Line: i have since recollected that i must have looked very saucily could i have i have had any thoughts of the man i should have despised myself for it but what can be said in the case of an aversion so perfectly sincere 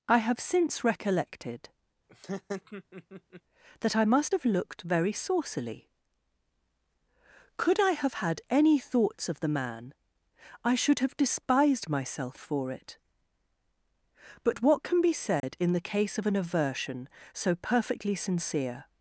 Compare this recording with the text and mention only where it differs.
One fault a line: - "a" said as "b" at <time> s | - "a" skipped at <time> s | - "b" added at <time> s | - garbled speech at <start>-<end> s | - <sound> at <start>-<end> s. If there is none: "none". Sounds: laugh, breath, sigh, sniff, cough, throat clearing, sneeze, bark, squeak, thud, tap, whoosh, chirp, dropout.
- laugh at 2.1-3.4 s
- "i have" skipped at 8.1 s
- dropout at 15.4-15.4 s